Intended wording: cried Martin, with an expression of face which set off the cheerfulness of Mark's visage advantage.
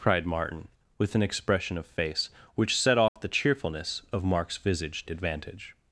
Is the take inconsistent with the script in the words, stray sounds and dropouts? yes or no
yes